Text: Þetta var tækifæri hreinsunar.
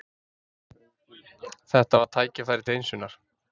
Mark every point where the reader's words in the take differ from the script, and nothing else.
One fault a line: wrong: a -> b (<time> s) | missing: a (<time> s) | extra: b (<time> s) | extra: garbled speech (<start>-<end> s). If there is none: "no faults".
no faults